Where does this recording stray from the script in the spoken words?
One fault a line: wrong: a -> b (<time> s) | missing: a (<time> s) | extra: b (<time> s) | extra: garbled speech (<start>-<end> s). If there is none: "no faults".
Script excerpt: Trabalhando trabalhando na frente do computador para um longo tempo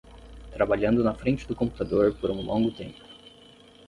missing: trabalhando (1.0 s)
wrong: para -> por (2.1 s)